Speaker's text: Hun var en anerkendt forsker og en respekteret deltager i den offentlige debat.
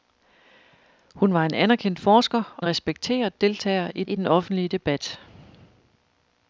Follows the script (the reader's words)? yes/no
no